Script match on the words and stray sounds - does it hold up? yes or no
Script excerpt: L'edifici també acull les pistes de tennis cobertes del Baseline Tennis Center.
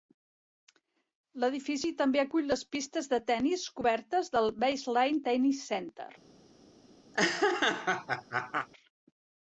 no